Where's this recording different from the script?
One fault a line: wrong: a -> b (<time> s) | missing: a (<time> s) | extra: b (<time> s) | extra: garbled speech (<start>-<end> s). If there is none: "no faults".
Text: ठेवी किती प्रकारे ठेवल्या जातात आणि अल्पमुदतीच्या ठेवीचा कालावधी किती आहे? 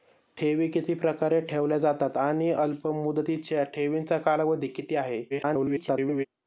extra: garbled speech (5.3-6.3 s)